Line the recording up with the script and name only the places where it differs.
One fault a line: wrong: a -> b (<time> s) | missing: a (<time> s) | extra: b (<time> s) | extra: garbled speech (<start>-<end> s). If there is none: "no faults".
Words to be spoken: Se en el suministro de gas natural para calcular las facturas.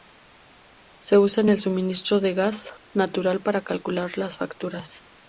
extra: usa (1.2 s)